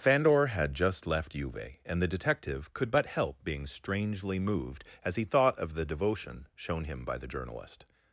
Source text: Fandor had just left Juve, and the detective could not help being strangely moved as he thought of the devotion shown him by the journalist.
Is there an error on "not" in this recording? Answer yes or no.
yes